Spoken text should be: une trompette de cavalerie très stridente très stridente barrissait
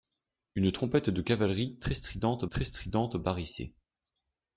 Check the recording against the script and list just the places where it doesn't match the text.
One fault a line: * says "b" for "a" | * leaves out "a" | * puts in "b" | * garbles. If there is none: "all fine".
all fine